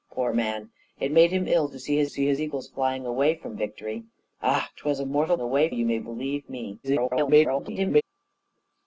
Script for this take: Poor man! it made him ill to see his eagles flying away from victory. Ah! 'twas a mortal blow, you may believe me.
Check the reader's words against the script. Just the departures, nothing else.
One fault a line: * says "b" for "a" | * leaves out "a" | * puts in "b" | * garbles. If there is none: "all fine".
* puts in "see his"
* says "away" for "blow"
* garbles